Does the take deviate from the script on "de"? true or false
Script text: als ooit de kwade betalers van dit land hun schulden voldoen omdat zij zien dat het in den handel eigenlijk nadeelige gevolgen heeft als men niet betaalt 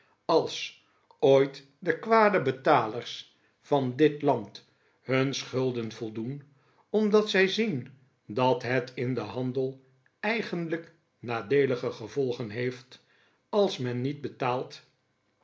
false